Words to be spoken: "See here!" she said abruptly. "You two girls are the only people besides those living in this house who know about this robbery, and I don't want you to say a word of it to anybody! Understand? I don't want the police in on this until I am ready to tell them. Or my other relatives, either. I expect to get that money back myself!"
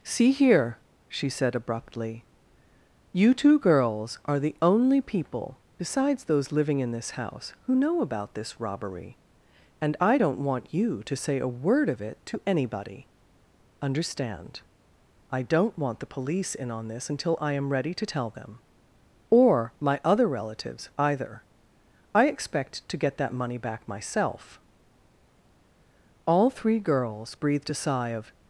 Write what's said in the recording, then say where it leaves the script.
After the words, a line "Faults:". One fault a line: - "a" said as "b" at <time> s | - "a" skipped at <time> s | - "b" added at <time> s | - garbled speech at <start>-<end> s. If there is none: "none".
"See here!" she said abruptly. "You two girls are the only people besides those living in this house who know about this robbery, and I don't want you to say a word of it to anybody! Understand? I don't want the police in on this until I am ready to tell them. Or my other relatives, either. I expect to get that money back myself!" All three girls breathed a sigh of
Faults:
- "All three girls breathed a sigh of" added at 26.2 s